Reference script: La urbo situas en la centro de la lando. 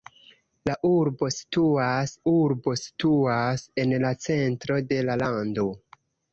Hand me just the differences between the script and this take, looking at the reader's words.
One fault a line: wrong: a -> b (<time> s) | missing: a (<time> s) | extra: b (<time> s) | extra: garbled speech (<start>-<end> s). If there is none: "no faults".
extra: urbo situas (2.3 s)